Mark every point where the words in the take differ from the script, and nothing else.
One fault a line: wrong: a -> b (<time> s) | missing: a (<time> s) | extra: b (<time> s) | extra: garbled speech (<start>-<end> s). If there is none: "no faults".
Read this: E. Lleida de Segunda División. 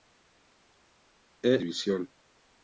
missing: Lleida de Segunda (1.6 s)